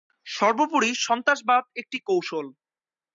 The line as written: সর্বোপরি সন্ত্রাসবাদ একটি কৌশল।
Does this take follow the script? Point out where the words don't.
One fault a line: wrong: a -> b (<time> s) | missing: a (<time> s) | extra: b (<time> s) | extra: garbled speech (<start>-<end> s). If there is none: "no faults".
no faults